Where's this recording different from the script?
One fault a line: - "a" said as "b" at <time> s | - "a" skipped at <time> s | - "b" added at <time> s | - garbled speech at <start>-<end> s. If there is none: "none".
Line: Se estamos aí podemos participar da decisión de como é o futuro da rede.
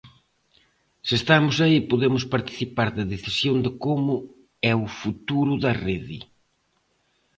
none